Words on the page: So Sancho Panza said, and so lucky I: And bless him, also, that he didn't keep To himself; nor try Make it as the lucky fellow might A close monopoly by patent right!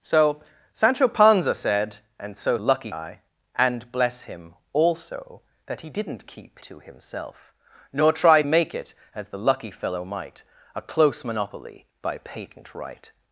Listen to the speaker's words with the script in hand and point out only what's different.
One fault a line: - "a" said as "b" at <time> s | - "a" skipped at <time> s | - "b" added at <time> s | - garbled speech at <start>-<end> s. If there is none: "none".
none